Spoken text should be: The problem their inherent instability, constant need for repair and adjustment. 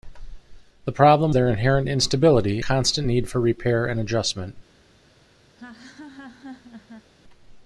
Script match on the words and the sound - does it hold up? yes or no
no